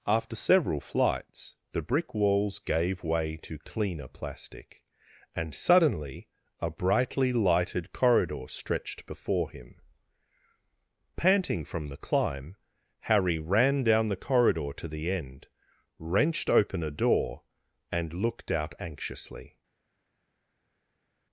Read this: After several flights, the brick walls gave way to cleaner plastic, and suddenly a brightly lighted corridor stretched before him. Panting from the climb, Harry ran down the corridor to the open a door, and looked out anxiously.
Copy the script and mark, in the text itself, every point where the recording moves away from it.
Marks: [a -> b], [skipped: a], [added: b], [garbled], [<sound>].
After several flights, the brick walls gave way to cleaner plastic, and suddenly a brightly lighted corridor stretched before him. Panting from the climb, Harry ran down the corridor to the [added: end wrenched] open a door, and looked out anxiously.